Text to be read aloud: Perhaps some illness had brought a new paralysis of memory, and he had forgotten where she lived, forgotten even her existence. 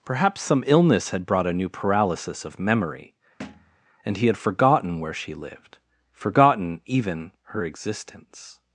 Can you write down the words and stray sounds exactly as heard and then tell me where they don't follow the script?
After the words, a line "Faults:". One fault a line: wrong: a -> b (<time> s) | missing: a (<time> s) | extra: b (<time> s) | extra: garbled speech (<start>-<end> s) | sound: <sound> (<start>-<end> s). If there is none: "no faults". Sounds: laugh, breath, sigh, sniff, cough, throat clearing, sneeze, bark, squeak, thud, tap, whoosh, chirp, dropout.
Perhaps some illness had brought a new paralysis of memory, and he had forgotten where she lived, forgotten even her existence.
Faults:
sound: thud (3.4-3.8 s)